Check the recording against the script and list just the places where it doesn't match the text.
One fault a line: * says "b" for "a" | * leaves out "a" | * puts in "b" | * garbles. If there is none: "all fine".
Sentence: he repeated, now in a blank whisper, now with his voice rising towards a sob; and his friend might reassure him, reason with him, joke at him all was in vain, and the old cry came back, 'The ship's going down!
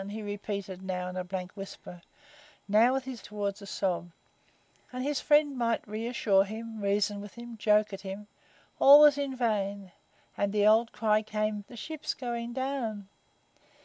* leaves out "voice rising"
* leaves out "back"